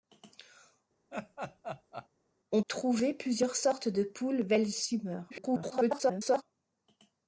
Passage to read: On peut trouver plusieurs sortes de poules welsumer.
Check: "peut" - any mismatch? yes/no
yes